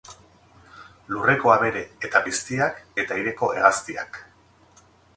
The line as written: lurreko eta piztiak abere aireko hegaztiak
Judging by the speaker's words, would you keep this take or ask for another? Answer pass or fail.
fail